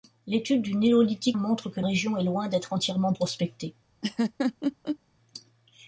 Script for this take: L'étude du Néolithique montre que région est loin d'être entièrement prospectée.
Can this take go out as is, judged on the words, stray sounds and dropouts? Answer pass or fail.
fail